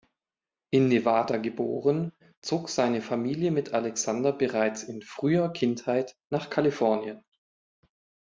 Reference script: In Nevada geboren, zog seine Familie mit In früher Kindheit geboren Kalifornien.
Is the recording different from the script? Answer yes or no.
yes